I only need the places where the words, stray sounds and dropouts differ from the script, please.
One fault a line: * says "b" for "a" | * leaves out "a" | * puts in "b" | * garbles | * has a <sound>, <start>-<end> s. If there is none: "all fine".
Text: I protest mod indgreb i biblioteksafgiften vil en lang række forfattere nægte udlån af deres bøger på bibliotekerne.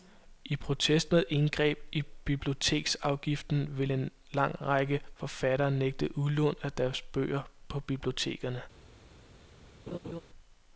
* has a laugh, 9.9-10.2 s